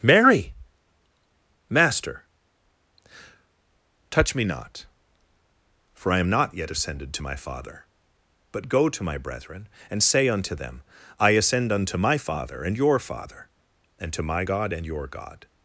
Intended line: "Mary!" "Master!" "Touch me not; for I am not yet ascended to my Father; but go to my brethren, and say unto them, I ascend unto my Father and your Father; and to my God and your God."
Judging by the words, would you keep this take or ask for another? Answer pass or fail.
pass